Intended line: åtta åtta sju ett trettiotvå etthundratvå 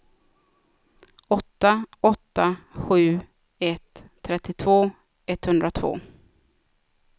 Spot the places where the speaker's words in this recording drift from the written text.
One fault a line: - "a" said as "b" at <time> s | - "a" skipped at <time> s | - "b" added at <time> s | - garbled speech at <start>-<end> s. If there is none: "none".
none